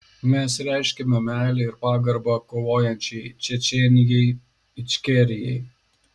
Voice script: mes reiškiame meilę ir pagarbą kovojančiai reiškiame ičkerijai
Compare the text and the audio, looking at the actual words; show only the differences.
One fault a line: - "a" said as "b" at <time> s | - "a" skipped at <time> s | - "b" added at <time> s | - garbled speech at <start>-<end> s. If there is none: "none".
- "reiškiame" said as "čečėnijai" at 3.5 s